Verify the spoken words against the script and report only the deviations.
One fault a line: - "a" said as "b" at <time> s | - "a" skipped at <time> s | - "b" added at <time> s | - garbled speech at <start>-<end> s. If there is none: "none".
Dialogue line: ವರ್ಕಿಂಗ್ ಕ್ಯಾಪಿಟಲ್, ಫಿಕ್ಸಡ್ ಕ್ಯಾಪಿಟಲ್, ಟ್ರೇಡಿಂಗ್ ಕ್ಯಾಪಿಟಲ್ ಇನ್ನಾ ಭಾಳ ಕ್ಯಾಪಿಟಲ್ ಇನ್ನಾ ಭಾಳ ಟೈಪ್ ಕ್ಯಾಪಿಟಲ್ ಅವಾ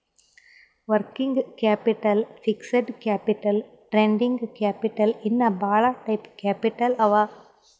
- "ಕ್ಯಾಪಿಟಲ್ ಇನ್ನಾ ಭಾಳ" skipped at 5.8 s